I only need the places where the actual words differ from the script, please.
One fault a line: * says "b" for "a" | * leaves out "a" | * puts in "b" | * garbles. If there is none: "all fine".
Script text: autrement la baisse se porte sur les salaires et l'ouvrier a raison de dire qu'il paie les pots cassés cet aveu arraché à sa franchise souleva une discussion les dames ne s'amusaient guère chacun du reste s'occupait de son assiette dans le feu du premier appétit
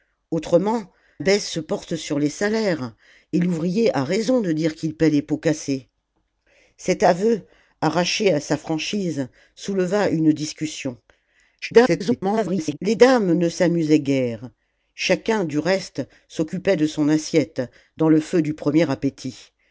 * leaves out "la"
* garbles